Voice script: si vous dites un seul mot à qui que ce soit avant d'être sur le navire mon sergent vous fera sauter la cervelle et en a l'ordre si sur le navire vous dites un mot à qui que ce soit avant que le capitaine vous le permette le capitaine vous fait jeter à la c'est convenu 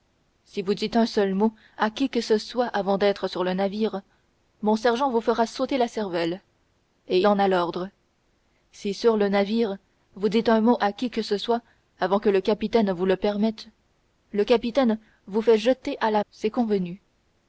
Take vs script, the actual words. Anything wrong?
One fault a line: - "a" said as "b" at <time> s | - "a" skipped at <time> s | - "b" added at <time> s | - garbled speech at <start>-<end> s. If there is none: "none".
none